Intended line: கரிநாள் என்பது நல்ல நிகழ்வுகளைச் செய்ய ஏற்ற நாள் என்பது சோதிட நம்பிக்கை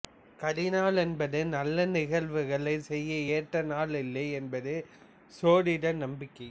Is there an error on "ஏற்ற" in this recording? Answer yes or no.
no